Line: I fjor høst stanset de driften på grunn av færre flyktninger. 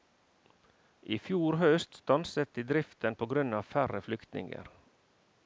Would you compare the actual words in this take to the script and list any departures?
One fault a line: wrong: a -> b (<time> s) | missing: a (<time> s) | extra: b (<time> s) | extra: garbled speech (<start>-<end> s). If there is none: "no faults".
no faults